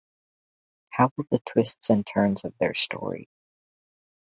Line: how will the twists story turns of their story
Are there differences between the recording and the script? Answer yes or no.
yes